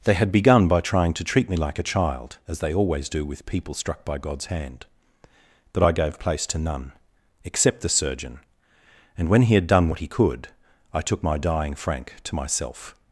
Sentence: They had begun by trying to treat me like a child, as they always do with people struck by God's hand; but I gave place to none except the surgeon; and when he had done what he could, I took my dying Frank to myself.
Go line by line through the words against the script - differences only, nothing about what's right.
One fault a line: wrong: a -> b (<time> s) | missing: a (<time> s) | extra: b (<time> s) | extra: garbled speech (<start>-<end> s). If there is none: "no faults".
no faults